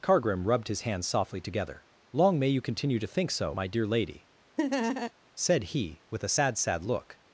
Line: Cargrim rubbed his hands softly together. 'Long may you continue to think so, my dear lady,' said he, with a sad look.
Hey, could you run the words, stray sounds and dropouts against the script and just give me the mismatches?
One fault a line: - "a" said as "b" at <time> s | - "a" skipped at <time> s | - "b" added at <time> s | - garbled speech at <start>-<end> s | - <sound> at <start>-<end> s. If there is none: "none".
- laugh at 4.6-5.1 s
- "sad" added at 6.6 s